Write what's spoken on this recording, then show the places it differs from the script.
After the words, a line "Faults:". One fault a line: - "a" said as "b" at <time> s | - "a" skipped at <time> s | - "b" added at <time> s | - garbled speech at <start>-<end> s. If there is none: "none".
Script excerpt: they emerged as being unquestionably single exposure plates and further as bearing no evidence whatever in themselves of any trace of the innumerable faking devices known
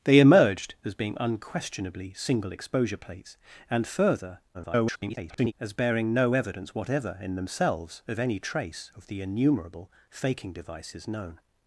they emerged as being unquestionably single exposure plates and further [garbled] as bearing no evidence whatever in themselves of any trace of the innumerable faking devices known
Faults:
- garbled speech at 4.5-5.5 s